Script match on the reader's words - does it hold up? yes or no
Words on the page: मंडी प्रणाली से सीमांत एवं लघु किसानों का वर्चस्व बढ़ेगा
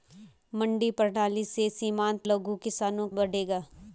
no